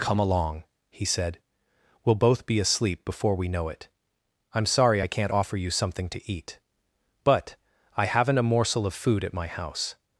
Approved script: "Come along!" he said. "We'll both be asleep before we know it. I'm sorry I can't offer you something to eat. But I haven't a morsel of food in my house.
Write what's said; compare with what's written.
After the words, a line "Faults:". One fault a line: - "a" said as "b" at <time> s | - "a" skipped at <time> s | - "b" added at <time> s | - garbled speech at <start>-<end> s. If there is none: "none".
"Come along!" he said. "We'll both be asleep before we know it. I'm sorry I can't offer you something to eat. But I haven't a morsel of food at my house.
Faults:
- "in" said as "at" at 9.2 s